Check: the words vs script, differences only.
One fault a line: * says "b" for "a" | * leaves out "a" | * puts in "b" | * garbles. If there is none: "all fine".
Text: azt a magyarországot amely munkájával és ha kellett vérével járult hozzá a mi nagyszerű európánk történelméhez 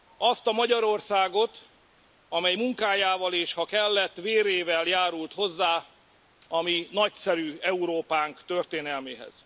all fine